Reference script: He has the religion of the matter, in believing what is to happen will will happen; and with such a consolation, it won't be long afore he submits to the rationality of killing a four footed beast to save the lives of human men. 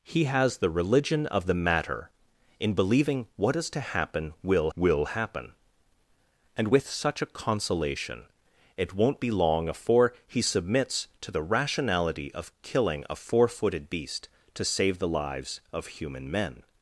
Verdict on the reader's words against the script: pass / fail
pass